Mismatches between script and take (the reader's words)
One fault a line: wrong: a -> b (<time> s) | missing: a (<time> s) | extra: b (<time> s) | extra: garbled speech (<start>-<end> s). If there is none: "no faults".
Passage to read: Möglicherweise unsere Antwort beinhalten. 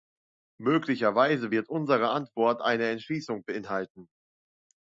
extra: wird (1.5 s)
extra: eine Entschließung (2.6 s)